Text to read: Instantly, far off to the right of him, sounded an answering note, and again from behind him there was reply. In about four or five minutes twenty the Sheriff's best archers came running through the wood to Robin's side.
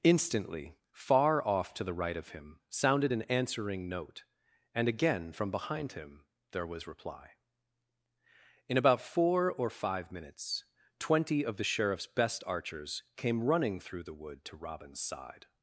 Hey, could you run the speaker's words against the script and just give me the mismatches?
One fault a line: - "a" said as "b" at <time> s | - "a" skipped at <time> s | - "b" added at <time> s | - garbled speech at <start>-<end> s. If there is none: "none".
- "of" added at 11.4 s